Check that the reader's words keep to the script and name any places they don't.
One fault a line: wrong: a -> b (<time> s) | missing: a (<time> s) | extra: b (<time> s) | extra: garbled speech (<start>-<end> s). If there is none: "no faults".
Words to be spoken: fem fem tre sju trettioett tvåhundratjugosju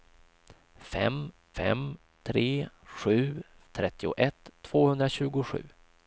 no faults